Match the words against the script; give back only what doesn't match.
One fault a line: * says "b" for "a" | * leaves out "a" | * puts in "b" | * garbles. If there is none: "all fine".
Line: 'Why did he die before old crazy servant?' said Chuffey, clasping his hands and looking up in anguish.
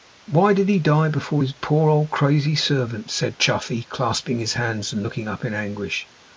* puts in "his poor"